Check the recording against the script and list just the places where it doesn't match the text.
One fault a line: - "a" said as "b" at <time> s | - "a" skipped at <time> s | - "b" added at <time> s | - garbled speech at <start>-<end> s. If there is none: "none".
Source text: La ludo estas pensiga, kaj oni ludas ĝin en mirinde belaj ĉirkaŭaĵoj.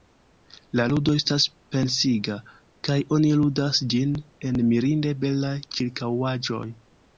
none